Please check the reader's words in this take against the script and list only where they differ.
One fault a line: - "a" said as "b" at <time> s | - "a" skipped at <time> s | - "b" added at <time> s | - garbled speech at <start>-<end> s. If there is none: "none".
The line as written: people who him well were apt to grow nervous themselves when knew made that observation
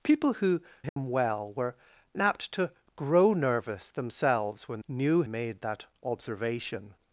none